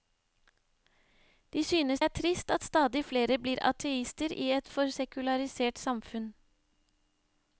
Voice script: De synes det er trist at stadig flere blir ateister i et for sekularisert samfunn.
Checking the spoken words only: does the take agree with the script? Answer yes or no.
no